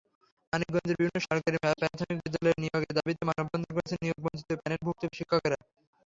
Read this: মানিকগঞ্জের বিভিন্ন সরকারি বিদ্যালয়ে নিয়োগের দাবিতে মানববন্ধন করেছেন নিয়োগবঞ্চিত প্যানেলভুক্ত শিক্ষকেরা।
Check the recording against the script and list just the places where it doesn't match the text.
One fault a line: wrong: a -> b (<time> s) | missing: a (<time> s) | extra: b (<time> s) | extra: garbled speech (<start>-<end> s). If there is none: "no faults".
extra: প্রাথমিক (1.8 s)